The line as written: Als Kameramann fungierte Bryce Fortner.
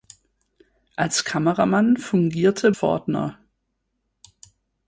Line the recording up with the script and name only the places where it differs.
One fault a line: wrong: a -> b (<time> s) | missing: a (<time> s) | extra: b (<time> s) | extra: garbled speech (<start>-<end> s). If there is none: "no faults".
missing: Bryce (2.7 s)